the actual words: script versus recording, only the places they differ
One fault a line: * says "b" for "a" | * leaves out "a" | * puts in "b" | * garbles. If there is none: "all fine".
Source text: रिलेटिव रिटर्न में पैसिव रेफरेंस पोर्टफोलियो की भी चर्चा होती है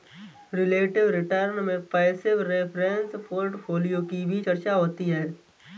all fine